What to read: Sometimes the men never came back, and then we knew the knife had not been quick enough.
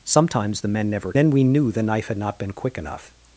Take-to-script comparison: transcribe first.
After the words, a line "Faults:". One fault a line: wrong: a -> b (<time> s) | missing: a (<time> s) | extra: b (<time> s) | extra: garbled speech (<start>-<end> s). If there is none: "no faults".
Sometimes the men never then we knew the knife had not been quick enough.
Faults:
missing: came back and (1.1 s)